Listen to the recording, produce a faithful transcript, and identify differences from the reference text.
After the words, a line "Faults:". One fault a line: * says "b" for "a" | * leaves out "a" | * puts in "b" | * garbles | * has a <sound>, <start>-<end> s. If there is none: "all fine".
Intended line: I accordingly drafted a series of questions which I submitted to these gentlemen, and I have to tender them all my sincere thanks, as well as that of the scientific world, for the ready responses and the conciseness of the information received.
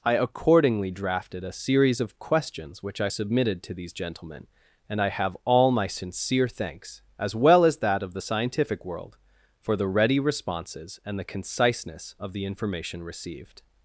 I accordingly drafted a series of questions which I submitted to these gentlemen, and I have all my sincere thanks, as well as that of the scientific world, for the ready responses and the conciseness of the information received.
Faults:
* leaves out "to tender them"